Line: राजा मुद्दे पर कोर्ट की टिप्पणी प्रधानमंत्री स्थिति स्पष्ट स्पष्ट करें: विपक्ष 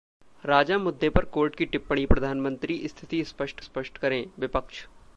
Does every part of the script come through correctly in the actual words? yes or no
yes